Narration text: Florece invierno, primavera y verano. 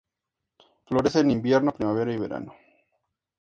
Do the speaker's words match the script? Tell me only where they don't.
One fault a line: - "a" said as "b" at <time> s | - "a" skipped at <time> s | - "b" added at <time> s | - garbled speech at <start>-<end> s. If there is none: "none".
- "en" added at 1.2 s